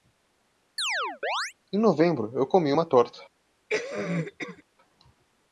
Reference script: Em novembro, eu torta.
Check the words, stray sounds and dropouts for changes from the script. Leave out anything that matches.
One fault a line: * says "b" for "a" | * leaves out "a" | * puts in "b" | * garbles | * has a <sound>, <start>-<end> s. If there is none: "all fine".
* has a chirp, 0.8-1.5 s
* puts in "comi uma"
* has a cough, 3.7-4.6 s